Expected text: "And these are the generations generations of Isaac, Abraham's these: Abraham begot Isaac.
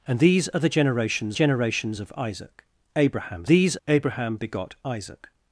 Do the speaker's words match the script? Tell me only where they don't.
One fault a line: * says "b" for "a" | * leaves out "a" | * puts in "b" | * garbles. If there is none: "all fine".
all fine